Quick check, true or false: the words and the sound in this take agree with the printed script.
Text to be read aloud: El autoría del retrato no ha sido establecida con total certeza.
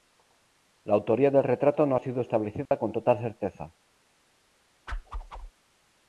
false